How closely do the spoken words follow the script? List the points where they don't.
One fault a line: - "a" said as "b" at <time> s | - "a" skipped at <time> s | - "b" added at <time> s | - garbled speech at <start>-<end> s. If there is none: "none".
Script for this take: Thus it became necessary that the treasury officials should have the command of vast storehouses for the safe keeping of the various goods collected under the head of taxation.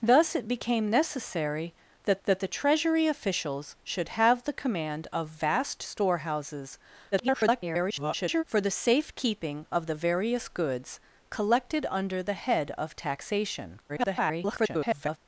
- "that" added at 2.3 s
- garbled speech at 7.1-8.4 s
- garbled speech at 13.9-15.2 s